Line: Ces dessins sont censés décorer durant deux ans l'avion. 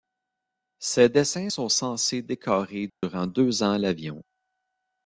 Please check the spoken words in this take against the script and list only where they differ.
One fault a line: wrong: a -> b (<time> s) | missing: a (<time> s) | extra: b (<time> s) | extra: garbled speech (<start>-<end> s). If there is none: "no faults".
no faults